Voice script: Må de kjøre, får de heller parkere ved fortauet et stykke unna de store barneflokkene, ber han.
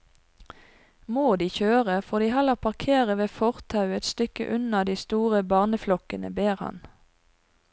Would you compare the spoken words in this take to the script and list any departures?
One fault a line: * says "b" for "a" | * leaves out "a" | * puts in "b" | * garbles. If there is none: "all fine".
all fine